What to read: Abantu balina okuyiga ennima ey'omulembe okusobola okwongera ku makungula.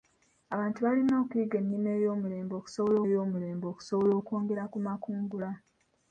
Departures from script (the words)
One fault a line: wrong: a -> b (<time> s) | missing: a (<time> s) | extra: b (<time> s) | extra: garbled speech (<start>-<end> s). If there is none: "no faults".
extra: ey'omulembe okusobola (3.1 s)